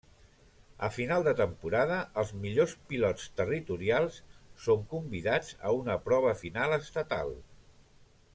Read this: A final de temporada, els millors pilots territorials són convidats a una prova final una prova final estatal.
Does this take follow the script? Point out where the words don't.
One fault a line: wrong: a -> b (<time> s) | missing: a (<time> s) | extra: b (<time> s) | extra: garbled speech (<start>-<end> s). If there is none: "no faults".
missing: una prova final (6.8 s)